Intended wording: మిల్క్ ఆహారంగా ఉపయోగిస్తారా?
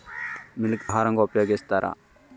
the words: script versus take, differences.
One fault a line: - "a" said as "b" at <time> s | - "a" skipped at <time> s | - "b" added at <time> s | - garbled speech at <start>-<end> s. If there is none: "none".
none